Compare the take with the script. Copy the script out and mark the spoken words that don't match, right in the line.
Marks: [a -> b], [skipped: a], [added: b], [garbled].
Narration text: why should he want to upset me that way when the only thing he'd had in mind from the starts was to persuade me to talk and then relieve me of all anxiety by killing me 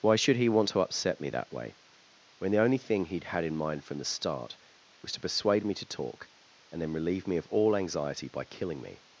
why should he want to upset me that way when the only thing he'd had in mind from the [starts -> start] was to persuade me to talk and then relieve me of all anxiety by killing me